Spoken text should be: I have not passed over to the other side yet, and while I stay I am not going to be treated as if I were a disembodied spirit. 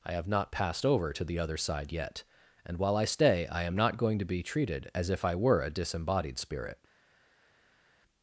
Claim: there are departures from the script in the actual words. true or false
false